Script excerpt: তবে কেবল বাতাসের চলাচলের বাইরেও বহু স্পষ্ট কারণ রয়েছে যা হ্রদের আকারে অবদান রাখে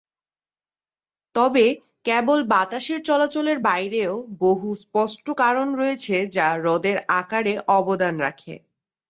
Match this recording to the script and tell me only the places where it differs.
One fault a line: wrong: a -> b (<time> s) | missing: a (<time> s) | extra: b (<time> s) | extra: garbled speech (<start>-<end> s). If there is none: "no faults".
no faults